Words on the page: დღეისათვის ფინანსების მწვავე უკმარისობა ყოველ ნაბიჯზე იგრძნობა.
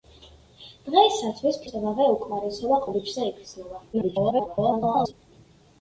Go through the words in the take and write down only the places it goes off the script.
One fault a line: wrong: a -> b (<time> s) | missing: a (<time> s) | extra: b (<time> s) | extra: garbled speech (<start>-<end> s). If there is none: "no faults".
missing: ფინანსების (1.6 s)
missing: ყოველ (2.8 s)
extra: garbled speech (3.9-5.1 s)